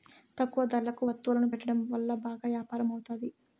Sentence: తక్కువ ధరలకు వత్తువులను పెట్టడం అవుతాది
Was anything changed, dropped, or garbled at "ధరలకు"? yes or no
no